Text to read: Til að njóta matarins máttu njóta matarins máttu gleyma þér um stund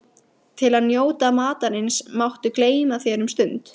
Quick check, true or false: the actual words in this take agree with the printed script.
false